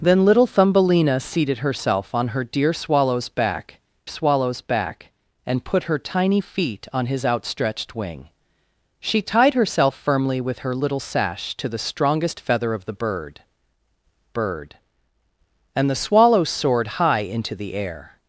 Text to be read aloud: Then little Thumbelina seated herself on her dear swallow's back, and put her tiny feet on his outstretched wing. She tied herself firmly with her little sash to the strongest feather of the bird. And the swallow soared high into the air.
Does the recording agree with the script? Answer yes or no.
no